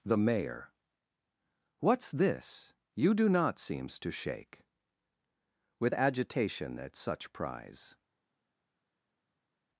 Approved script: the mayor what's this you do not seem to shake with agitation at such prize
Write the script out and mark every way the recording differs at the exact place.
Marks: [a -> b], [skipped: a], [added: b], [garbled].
the mayor what's this you do not [seem -> seems] to shake with agitation at such prize